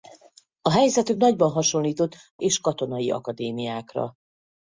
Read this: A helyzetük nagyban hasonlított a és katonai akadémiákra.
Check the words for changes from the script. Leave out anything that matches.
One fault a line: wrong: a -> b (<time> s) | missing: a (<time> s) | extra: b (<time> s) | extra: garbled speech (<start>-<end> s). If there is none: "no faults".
no faults